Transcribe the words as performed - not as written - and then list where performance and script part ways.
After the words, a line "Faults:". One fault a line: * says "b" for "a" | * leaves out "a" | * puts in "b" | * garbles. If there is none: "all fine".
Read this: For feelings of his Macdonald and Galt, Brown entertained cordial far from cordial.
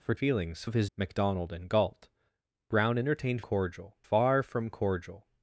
For feelings of his Macdonald and Galt, Brown entertained cordial far from cordial.
Faults:
all fine